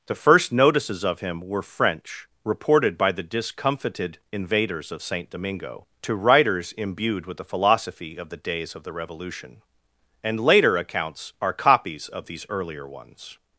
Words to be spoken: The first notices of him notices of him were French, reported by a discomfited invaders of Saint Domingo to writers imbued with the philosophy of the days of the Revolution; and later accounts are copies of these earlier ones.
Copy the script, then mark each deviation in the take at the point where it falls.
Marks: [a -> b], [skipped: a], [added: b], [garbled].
The first notices of him [skipped: notices of him] were French, reported by [a -> the] discomfited invaders of Saint Domingo to writers imbued with the philosophy of the days of the Revolution; and later accounts are copies of these earlier ones.